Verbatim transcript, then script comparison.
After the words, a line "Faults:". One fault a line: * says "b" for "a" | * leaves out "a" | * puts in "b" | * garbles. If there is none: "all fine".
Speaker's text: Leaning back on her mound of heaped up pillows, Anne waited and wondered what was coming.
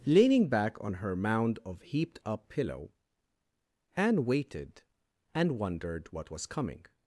Leaning back on her mound of heaped up pillow, Anne waited and wondered what was coming.
Faults:
* says "pillow" for "pillows"